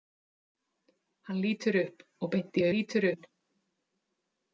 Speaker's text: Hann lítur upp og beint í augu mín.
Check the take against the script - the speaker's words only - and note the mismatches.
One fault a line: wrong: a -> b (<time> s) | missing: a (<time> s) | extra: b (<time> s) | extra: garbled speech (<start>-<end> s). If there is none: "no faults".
wrong: augu -> lítur (2.7 s)